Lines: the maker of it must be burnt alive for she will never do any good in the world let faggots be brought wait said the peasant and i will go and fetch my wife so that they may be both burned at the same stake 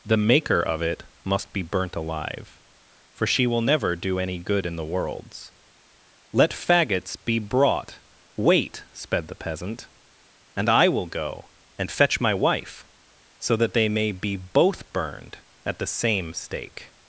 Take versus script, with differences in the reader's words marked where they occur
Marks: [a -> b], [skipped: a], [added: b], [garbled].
the maker of it must be burnt alive for she will never do any good in the [world -> worlds] let faggots be brought wait [said -> sped] the peasant and i will go and fetch my wife so that they may be both burned at the same stake